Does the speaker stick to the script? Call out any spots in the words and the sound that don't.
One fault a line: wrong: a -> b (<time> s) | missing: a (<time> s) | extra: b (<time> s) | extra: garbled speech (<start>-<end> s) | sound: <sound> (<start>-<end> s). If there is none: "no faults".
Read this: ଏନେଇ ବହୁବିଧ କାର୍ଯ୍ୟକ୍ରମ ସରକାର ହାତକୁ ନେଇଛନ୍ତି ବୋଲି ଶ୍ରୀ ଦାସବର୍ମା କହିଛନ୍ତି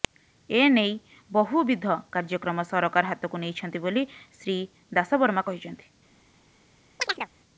sound: chirp (7.0-7.3 s)